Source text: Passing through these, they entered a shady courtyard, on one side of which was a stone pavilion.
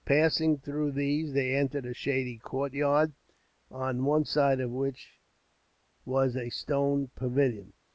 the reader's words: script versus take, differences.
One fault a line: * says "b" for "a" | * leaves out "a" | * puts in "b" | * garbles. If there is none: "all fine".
all fine